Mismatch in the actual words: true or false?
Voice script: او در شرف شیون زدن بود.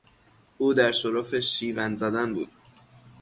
false